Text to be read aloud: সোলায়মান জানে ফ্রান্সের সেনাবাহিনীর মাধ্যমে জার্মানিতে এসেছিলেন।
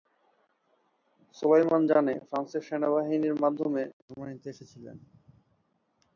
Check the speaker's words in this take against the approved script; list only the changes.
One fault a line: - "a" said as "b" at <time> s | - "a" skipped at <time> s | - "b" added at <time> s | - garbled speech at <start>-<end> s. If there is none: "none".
none